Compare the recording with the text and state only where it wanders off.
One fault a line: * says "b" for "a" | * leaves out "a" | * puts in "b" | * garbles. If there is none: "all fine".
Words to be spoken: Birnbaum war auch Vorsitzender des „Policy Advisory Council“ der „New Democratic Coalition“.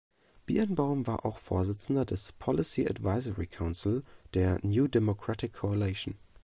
all fine